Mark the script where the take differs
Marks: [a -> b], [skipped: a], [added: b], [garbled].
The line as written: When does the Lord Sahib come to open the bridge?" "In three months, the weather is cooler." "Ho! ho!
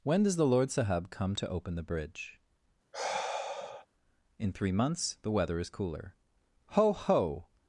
When does the Lord Sahib come to open the bridge?" "In three months, the weather is cooler." "Ho! ho!